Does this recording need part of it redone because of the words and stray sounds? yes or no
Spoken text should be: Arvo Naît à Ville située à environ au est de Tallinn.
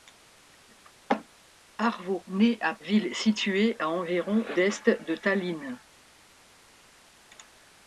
no